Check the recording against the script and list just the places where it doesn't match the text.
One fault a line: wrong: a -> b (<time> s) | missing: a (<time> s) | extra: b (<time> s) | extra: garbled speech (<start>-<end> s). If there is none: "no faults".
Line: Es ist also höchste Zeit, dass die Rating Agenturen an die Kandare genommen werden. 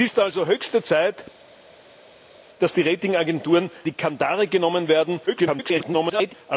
missing: an (3.7 s)
extra: garbled speech (5.3-6.3 s)